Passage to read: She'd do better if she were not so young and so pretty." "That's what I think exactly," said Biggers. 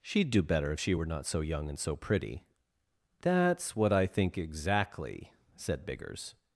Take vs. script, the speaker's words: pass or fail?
pass